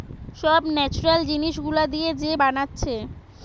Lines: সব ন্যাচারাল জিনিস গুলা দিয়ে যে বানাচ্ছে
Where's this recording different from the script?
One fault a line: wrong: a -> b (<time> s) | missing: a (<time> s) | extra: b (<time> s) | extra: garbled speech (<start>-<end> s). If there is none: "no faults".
no faults